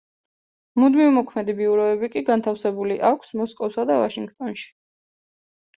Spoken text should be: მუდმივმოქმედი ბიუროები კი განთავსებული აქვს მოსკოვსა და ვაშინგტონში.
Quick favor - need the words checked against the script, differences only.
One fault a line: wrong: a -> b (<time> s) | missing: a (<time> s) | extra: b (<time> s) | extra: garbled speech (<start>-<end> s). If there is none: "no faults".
no faults